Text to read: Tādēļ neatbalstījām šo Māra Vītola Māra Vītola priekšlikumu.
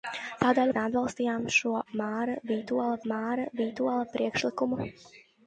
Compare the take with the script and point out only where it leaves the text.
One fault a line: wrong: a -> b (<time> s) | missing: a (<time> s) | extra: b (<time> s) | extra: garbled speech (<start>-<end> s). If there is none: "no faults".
no faults